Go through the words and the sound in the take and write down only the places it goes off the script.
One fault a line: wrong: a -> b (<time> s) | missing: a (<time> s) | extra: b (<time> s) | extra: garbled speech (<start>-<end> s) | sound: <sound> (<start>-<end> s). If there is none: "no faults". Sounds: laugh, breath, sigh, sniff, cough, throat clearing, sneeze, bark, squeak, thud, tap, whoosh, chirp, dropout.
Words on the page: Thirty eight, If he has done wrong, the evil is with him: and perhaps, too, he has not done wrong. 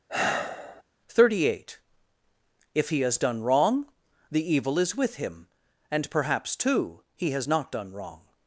sound: sigh (0.1-0.8 s)